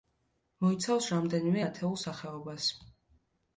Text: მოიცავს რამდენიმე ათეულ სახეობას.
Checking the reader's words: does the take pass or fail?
pass